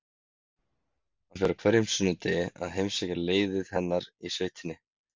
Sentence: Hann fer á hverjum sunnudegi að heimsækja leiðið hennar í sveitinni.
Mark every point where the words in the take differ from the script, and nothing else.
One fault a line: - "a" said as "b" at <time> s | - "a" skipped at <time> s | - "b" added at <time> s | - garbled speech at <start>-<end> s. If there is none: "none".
none